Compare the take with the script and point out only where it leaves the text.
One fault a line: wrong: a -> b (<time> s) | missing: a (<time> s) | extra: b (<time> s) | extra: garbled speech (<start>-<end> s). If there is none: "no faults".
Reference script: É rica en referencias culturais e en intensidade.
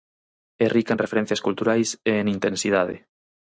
no faults